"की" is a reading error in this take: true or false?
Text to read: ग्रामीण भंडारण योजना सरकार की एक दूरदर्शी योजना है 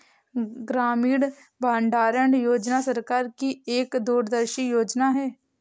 false